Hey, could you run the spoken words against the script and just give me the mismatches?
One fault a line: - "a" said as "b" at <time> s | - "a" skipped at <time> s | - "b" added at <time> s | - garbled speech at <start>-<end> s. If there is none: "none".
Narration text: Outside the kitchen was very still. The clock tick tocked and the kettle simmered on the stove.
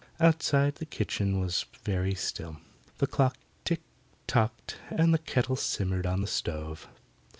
none